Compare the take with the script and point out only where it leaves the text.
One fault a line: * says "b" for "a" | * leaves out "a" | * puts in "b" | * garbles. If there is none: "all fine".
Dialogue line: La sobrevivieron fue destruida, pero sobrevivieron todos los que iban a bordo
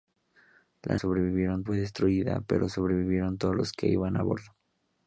all fine